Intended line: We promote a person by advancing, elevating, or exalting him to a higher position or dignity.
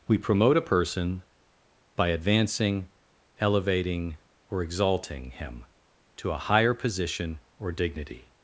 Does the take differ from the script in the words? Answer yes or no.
no